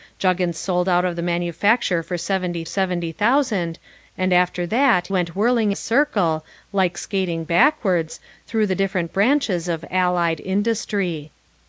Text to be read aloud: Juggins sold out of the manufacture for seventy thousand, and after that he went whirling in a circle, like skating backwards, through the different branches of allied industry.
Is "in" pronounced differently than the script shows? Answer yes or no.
yes